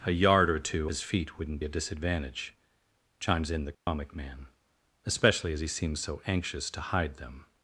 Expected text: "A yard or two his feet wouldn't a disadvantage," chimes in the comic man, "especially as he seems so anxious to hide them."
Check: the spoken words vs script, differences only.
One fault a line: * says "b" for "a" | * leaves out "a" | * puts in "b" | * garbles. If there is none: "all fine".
all fine